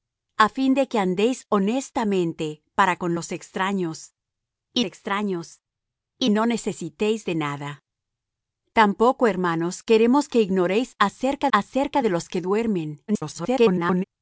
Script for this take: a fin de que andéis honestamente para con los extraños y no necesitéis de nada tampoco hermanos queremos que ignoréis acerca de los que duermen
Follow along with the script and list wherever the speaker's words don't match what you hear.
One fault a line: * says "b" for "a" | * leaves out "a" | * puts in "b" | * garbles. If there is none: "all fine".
* puts in "extraños y"
* puts in "acerca"
* garbles